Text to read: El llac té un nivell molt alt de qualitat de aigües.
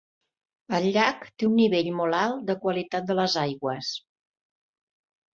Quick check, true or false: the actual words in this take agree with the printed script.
false